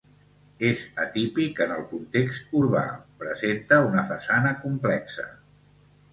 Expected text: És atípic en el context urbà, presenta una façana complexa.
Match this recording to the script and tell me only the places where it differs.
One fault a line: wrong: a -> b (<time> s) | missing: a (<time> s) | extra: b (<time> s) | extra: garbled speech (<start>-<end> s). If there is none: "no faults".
no faults